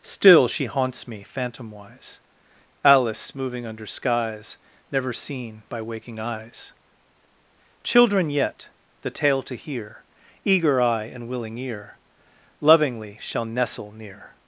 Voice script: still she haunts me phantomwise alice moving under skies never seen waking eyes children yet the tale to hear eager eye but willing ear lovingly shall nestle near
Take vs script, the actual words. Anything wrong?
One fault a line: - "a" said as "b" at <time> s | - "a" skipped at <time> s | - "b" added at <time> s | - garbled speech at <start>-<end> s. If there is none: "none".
- "by" added at 5.7 s
- "but" said as "and" at 11.1 s